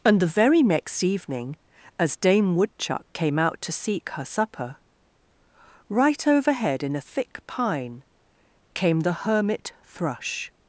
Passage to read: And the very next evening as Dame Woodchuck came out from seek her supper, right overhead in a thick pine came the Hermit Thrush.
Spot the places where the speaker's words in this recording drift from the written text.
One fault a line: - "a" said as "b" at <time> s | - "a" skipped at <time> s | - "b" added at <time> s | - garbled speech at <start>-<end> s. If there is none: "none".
- "from" said as "to" at 3.6 s